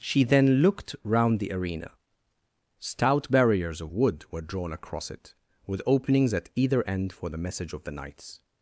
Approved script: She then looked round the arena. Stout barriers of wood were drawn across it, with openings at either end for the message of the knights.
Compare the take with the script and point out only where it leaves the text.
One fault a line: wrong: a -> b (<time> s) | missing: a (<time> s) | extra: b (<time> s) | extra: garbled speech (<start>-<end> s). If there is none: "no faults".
no faults